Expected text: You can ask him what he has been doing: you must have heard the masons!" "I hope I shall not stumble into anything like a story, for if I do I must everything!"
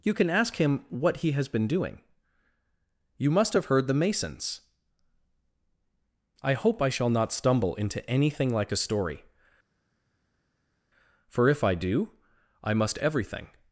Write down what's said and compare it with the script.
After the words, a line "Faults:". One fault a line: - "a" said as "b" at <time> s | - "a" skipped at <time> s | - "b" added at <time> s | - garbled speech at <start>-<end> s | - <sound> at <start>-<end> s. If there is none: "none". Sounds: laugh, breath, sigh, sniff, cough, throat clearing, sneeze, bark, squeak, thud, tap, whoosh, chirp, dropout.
You can ask him what he has been doing: you must have heard the masons!" "I hope I shall not stumble into anything like a story, for if I do I must everything!"
Faults:
none